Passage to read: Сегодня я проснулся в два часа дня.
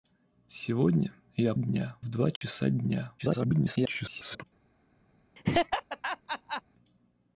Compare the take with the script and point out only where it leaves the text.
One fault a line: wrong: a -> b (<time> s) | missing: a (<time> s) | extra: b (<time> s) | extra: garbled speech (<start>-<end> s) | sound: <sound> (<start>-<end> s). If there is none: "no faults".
wrong: проснулся -> дня (1.5 s)
sound: dropout (2.4-2.4 s)
extra: garbled speech (3.2-4.4 s)
sound: laugh (5.4-6.6 s)